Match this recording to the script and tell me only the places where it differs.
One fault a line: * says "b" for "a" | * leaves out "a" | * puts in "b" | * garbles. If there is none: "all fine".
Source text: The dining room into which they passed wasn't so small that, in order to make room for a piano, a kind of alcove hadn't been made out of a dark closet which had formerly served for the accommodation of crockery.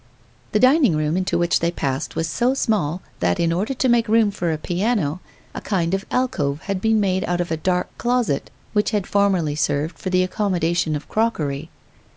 * says "was" for "wasn't"
* says "had" for "hadn't"